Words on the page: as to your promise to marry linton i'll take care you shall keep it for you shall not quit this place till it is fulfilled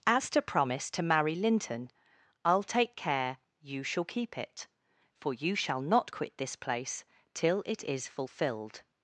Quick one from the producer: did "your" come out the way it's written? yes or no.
no